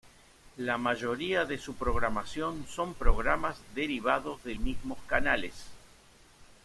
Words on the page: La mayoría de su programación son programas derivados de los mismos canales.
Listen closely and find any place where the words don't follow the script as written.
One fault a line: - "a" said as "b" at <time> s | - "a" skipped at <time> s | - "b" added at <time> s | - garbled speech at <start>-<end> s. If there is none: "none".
- "los" skipped at 4.5 s